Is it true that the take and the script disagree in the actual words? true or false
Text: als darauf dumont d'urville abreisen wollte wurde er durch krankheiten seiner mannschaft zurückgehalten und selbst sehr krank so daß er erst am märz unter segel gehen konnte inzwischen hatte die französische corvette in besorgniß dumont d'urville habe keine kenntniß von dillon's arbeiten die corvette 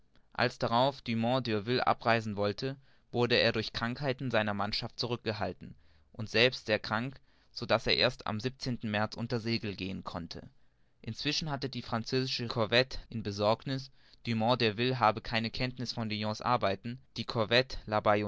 false